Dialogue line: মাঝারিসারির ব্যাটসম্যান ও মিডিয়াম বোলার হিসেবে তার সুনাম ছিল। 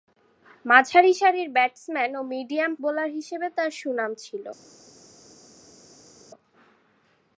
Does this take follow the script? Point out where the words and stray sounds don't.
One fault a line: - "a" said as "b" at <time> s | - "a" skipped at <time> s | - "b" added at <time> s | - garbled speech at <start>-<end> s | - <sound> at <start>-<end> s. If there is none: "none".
none